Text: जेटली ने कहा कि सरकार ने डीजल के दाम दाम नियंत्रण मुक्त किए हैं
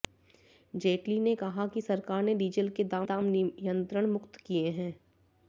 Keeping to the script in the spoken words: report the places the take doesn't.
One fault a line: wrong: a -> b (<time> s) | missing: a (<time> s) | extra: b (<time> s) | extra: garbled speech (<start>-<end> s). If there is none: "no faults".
no faults